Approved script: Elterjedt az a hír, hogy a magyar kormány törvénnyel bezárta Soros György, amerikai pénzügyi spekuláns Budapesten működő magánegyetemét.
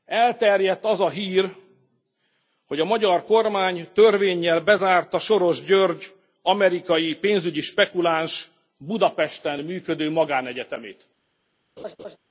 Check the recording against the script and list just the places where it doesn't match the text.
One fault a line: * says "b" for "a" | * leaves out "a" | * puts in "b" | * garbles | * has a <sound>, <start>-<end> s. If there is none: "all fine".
* has a laugh, 11.8-12.2 s